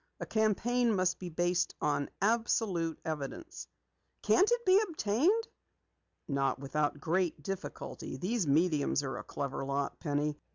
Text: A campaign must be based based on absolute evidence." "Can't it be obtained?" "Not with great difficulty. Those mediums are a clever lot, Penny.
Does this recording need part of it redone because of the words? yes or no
yes